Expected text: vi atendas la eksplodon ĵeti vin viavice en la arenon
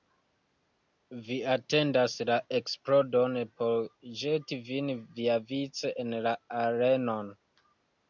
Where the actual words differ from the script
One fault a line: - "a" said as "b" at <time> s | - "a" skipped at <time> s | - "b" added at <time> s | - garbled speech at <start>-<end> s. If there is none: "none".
- "por" added at 3.6 s